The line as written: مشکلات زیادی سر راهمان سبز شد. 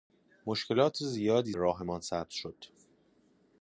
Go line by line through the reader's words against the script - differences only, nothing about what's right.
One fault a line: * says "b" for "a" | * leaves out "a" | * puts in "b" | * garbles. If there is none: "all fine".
* leaves out "سر"